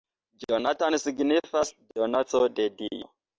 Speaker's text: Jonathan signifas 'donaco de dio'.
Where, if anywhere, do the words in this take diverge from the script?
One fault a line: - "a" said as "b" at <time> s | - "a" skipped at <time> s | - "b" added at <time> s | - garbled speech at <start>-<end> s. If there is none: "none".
none